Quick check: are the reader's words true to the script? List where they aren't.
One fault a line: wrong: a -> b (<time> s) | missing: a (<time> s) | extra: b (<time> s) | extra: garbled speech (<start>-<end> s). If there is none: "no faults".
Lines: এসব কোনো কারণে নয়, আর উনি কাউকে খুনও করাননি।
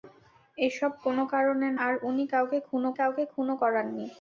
missing: নয় (1.7 s)
extra: কাউকে খুনও (3.0 s)